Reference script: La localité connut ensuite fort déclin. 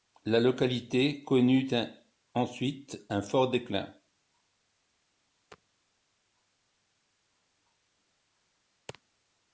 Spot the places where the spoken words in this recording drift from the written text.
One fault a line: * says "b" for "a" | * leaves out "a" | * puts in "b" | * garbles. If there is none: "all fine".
* puts in "un"